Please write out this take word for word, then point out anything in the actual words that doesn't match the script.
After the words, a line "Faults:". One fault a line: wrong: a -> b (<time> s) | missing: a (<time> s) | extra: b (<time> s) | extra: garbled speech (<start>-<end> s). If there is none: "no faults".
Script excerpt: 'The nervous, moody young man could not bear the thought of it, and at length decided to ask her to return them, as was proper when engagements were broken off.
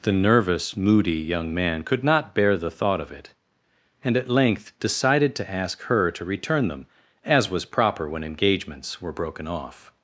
'The nervous, moody young man could not bear the thought of it, and at length decided to ask her to return them, as was proper when engagements were broken off.
Faults:
no faults